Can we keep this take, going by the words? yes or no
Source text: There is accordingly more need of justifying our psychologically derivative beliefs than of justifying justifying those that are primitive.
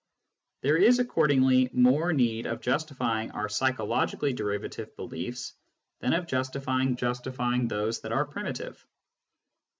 yes